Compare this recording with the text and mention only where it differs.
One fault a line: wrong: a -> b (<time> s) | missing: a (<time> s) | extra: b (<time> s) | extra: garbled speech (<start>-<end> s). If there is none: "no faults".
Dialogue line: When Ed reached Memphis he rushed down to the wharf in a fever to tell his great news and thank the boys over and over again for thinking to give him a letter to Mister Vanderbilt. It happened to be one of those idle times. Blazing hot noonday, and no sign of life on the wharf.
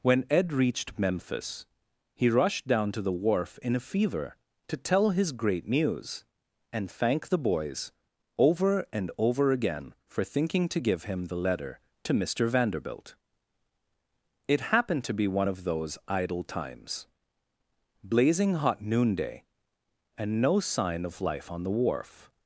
wrong: a -> the (11.3 s)